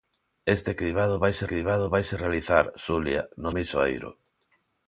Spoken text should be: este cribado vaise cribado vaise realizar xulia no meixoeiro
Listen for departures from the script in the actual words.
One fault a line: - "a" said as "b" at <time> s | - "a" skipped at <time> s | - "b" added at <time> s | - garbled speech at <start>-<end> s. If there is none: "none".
none